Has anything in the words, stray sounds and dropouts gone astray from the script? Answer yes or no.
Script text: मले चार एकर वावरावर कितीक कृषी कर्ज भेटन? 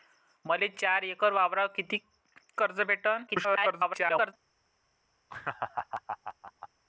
yes